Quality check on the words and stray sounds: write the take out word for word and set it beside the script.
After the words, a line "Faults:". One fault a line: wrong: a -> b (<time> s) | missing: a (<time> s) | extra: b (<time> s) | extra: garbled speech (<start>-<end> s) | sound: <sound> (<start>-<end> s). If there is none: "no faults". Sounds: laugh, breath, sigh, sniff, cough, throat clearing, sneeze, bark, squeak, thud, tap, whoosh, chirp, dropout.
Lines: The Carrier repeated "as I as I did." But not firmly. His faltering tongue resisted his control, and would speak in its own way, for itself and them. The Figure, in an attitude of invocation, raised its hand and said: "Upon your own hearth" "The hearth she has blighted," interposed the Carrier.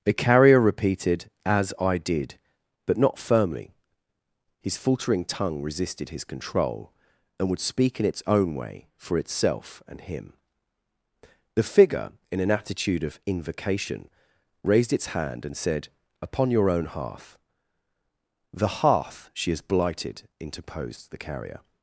The Carrier repeated "as I did." But not firmly. His faltering tongue resisted his control, and would speak in its own way, for itself and him. The Figure, in an attitude of invocation, raised its hand and said: "Upon your own hearth" "The hearth she has blighted," interposed the Carrier.
Faults:
missing: as I (2.0 s)
wrong: them -> him (10.0 s)